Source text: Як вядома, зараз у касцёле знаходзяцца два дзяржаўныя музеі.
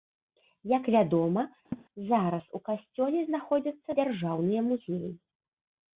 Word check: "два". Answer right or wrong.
wrong